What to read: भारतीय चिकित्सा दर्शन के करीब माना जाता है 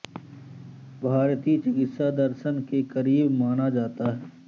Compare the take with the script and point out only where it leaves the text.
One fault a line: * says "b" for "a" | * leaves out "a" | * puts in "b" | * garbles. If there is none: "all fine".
all fine